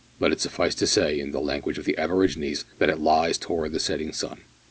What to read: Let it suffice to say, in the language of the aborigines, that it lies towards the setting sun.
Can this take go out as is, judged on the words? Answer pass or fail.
pass